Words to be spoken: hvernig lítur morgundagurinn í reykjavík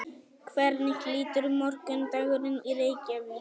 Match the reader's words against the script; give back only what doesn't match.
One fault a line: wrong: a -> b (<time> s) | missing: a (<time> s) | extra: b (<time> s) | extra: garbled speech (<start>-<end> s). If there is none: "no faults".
no faults